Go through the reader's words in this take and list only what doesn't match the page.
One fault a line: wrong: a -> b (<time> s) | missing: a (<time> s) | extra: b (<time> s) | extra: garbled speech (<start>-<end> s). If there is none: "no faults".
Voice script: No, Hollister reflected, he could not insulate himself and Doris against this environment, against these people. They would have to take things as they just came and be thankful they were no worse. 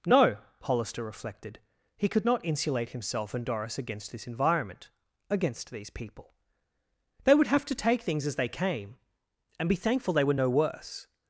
missing: just (8.5 s)